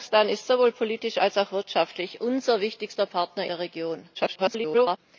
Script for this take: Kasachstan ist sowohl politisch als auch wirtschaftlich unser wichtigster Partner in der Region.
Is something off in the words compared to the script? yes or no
yes